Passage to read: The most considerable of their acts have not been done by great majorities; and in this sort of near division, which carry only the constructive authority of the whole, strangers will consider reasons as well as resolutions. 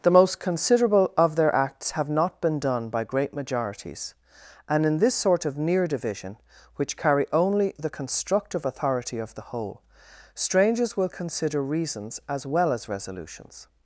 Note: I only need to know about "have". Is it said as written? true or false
true